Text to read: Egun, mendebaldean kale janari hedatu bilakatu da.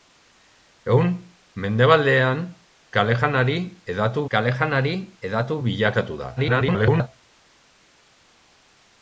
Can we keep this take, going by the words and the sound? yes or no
no